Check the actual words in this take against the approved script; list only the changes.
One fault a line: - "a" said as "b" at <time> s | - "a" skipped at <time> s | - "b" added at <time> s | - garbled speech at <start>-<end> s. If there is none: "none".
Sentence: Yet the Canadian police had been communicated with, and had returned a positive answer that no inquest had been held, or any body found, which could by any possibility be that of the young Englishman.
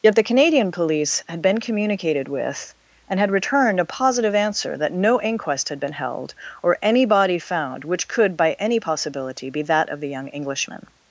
none